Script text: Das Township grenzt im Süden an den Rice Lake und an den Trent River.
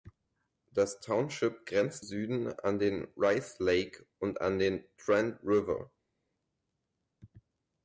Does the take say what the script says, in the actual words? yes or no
no